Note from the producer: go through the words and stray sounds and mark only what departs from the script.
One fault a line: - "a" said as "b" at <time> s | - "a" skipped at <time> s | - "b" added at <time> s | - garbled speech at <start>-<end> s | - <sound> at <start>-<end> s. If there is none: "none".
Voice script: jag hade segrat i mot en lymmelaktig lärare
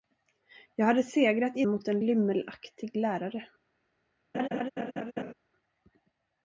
- laugh at 4.3-5.3 s